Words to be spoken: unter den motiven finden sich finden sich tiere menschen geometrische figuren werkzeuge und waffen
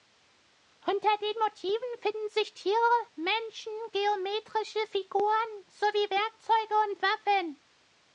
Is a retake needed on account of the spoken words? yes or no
yes